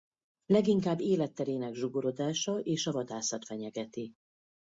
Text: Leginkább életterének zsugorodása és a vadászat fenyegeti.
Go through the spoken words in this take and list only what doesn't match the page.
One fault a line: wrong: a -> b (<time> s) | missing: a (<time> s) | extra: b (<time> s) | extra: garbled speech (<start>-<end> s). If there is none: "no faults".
no faults